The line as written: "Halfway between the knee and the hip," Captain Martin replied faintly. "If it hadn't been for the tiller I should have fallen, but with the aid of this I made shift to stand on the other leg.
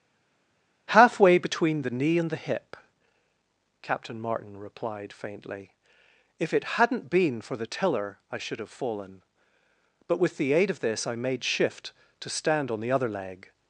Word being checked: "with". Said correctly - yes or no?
yes